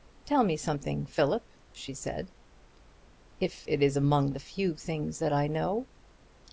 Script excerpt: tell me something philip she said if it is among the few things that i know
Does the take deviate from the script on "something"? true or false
false